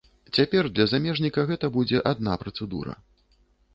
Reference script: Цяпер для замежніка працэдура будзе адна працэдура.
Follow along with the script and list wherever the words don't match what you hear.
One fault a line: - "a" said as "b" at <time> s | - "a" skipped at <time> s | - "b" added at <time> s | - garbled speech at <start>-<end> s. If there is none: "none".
- "працэдура" said as "гэта" at 1.5 s